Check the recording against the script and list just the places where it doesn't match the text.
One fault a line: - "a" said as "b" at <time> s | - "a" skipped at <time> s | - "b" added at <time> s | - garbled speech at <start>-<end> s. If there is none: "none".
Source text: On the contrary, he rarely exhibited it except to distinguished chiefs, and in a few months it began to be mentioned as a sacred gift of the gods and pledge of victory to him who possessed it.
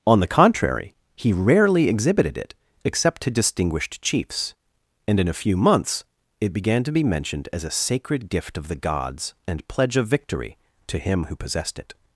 none